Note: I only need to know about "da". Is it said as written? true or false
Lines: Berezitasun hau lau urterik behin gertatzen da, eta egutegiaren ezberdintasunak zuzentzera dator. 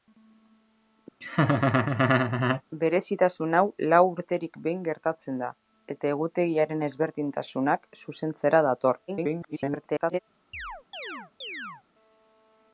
true